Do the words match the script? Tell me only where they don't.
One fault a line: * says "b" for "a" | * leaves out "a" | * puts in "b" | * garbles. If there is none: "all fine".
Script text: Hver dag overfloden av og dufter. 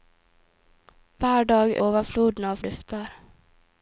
all fine